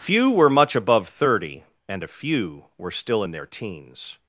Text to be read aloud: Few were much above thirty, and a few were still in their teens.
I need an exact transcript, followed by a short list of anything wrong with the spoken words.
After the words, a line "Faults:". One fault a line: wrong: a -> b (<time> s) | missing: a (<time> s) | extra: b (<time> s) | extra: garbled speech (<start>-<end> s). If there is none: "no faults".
Few were much above thirty, and a few were still in their teens.
Faults:
no faults